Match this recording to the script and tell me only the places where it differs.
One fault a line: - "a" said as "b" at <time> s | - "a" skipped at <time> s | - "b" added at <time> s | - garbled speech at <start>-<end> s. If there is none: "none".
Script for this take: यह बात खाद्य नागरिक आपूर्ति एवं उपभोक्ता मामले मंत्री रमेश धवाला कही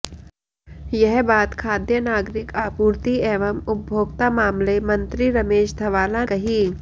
none